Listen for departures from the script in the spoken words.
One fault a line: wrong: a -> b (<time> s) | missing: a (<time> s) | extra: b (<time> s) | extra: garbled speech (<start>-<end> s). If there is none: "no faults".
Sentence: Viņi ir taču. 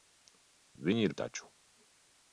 no faults